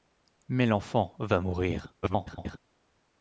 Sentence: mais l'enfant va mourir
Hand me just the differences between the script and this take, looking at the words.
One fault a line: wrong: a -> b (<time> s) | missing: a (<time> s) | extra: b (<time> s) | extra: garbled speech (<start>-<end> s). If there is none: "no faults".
extra: garbled speech (2.0-2.6 s)